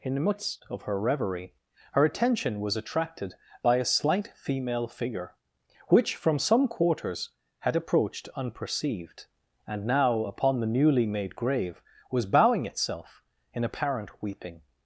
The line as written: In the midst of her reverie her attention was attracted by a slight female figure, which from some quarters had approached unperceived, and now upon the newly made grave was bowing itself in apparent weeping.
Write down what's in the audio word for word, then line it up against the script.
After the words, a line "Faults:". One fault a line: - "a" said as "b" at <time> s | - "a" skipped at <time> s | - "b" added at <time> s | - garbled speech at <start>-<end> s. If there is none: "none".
In the midst of her reverie her attention was attracted by a slight female figure, which from some quarters had approached unperceived, and now upon the newly made grave was bowing itself in apparent weeping.
Faults:
none